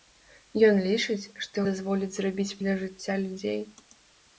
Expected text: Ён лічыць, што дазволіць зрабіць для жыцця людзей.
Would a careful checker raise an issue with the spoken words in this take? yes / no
no